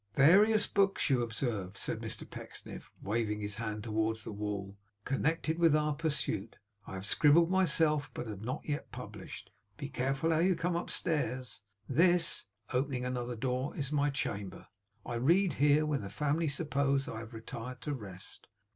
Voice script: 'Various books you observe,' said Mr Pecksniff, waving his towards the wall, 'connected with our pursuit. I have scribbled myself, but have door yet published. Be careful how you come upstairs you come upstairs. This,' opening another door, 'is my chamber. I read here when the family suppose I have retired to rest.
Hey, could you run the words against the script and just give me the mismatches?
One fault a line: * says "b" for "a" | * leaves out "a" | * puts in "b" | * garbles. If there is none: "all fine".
* puts in "hand"
* says "not" for "door"
* leaves out "you come upstairs"